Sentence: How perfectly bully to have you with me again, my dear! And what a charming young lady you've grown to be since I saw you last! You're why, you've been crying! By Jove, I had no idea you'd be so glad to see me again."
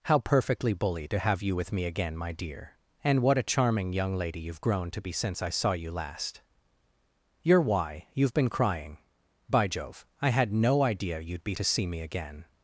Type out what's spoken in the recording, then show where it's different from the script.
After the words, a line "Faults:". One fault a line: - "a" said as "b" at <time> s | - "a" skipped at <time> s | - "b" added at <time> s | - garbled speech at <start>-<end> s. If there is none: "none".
How perfectly bully to have you with me again, my dear! And what a charming young lady you've grown to be since I saw you last! You're why, you've been crying! By Jove, I had no idea you'd be to see me again."
Faults:
- "so glad" skipped at 11.6 s